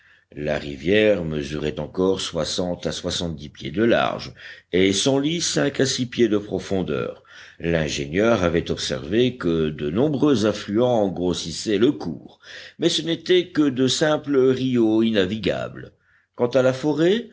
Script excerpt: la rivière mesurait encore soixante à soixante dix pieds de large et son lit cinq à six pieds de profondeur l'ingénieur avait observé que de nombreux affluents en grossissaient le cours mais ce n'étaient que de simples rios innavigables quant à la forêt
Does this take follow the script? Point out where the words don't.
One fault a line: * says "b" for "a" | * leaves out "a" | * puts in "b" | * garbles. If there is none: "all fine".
all fine